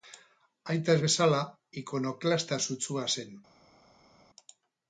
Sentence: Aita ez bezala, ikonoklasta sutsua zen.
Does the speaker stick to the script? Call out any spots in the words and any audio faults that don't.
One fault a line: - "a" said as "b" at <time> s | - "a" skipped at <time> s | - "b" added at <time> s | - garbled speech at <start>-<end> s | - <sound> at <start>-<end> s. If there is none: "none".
none